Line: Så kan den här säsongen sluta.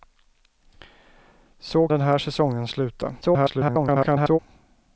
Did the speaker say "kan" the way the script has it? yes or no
no